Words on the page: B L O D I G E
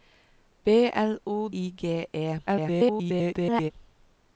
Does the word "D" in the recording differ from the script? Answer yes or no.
yes